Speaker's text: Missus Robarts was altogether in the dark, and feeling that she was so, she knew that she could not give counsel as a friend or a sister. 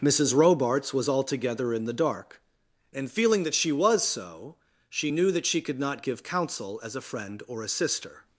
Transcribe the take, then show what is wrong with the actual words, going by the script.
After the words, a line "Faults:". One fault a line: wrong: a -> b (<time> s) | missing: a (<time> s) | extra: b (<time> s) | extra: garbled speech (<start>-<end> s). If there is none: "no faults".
Missus Robarts was altogether in the dark, and feeling that she was so, she knew that she could not give counsel as a friend or a sister.
Faults:
no faults